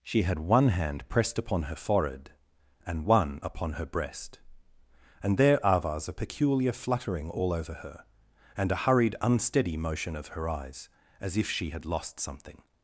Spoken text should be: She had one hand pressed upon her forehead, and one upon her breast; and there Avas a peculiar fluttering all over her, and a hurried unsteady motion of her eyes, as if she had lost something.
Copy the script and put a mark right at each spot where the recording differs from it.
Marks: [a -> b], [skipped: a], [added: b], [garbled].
She had one hand pressed upon her forehead, and one upon her breast; and there Avas a peculiar fluttering all over her, and a hurried unsteady motion of her eyes, as if she had lost something.